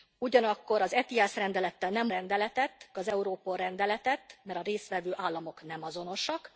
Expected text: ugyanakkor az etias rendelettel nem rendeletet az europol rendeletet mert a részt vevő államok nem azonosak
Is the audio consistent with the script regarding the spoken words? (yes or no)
yes